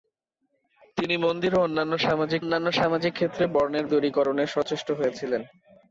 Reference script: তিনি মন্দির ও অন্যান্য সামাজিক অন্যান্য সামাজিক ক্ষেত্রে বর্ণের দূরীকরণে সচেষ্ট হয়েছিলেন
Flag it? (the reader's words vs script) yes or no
no